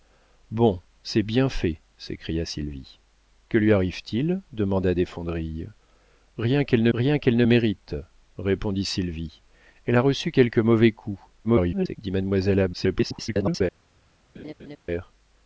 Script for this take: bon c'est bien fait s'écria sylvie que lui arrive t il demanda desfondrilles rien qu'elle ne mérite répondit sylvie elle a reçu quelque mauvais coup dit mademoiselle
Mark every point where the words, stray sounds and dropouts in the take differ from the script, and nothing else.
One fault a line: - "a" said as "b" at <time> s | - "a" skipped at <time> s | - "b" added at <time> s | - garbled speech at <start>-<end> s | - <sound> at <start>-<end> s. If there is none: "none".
- "rien qu'elle ne" added at 6.9 s
- garbled speech at 11.4-12.0 s
- garbled speech at 12.7-13.6 s
- laugh at 14.3-14.8 s